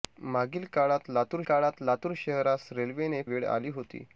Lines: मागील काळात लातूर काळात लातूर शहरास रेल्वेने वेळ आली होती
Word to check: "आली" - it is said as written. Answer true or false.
true